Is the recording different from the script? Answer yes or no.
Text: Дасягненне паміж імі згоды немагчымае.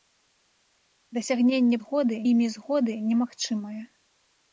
yes